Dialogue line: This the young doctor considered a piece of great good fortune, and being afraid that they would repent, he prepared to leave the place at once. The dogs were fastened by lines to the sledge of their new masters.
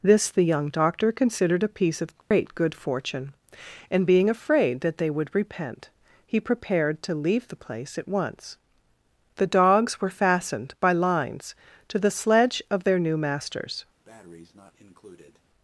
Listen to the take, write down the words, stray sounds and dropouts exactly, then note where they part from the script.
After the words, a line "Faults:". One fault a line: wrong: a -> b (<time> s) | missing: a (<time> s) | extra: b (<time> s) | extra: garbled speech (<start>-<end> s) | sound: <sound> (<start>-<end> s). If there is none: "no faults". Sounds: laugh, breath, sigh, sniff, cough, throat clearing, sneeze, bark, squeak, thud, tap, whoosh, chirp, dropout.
This the young doctor considered a piece of great good fortune, and being afraid that they would repent, he prepared to leave the place at once. The dogs were fastened by lines to the sledge of their new masters.
Faults:
sound: dropout (2.2-2.3 s)
sound: breath (14.0-15.4 s)